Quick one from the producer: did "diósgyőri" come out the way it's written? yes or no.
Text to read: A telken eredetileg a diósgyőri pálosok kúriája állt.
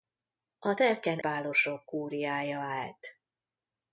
no